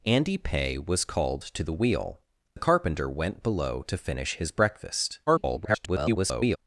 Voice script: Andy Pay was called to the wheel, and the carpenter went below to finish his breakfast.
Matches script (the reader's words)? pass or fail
fail